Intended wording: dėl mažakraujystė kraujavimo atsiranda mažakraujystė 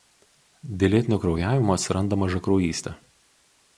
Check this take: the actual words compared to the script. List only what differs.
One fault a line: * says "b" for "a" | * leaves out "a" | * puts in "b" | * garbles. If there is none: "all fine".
* says "lėtinio" for "mažakraujystė"